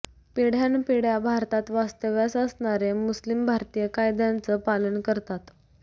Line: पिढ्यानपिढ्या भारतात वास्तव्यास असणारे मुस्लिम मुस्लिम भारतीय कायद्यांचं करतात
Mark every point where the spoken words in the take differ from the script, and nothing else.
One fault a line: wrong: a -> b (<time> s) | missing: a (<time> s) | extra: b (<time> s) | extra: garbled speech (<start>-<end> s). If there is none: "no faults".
missing: मुस्लिम (3.5 s)
extra: पालन (4.6 s)